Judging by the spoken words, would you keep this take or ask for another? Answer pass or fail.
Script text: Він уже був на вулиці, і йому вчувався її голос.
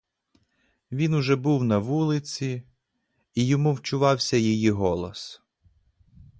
pass